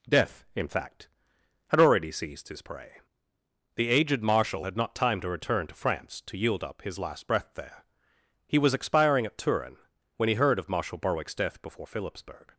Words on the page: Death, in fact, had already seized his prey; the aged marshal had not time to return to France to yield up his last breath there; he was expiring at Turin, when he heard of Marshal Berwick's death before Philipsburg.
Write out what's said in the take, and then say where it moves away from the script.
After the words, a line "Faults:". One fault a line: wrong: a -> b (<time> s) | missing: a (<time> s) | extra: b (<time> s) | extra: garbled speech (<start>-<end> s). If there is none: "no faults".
Death, in fact, had already seized his prey; the aged marshal had not time to return to France to yield up his last breath there; he was expiring at Turin, when he heard of Marshal Berwick's death before Philipsburg.
Faults:
no faults